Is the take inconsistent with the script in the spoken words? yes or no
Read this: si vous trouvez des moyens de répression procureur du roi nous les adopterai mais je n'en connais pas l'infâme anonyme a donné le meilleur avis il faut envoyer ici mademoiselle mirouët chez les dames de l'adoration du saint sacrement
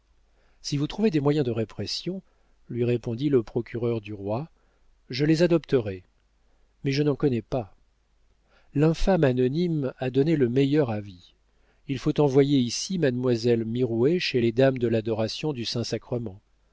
yes